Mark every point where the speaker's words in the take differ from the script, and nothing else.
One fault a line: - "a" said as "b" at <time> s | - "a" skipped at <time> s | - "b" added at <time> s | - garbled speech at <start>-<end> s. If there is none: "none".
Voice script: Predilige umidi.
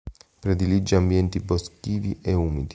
- "ambienti boschivi e" added at 0.9 s